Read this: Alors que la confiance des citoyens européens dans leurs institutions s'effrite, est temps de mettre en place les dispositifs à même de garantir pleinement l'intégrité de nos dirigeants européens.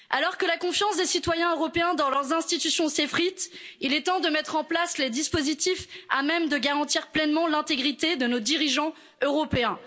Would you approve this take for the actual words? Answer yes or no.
no